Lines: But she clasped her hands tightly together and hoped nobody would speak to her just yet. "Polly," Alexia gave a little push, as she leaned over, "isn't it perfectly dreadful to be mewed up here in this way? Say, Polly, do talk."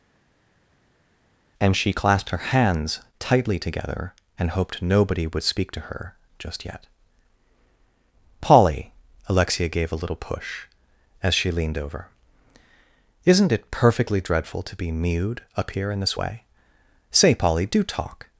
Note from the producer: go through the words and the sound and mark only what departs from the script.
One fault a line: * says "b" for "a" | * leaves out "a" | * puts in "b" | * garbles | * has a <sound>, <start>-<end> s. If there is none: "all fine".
* says "And" for "But"